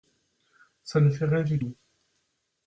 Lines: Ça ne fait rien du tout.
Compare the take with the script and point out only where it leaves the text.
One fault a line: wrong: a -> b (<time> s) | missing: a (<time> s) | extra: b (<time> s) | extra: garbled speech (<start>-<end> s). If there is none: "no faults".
no faults